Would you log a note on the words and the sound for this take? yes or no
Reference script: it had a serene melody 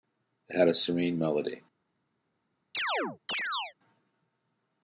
yes